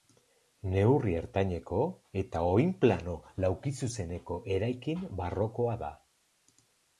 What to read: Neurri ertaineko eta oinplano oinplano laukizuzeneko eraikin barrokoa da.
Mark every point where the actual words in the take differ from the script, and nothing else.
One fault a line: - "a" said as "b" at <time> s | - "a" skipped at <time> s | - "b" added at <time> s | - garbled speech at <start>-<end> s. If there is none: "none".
- "oinplano" skipped at 3.1 s